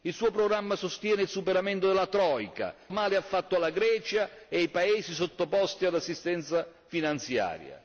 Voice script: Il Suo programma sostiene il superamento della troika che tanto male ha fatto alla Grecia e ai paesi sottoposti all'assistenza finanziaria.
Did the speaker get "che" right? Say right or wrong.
wrong